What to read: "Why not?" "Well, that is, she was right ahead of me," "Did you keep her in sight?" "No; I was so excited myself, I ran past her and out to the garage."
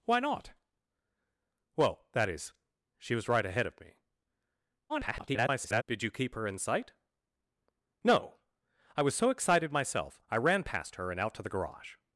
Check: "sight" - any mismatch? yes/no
no